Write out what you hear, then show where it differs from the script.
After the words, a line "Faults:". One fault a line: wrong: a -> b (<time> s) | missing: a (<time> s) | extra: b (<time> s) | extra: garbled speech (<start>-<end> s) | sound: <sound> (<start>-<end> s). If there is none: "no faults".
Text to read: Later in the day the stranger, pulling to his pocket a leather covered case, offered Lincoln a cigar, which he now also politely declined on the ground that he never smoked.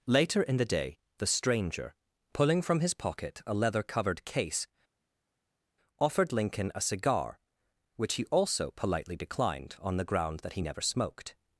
Later in the day the stranger, pulling from his pocket a leather covered case, offered Lincoln a cigar, which he also politely declined on the ground that he never smoked.
Faults:
wrong: to -> from (2.6 s)
missing: now (8.2 s)